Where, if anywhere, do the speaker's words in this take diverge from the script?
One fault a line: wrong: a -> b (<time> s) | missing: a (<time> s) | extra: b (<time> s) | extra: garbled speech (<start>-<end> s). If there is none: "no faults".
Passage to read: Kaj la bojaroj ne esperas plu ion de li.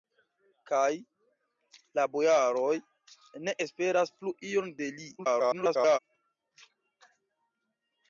extra: garbled speech (5.2-6.0 s)